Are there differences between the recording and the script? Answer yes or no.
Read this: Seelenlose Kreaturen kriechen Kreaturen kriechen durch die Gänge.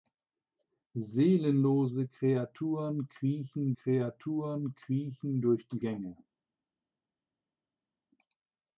no